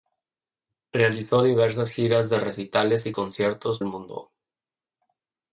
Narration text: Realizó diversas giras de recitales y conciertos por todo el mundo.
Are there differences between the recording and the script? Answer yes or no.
yes